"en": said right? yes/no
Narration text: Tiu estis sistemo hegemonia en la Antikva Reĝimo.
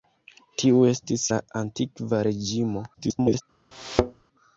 no